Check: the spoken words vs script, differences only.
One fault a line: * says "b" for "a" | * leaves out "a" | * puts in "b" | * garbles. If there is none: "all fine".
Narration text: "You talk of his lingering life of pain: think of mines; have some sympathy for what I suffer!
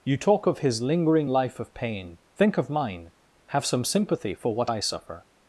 * says "mine" for "mines"